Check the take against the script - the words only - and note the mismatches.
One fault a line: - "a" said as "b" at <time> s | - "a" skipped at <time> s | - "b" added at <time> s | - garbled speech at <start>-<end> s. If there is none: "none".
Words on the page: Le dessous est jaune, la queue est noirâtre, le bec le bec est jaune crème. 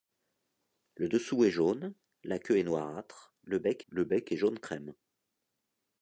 none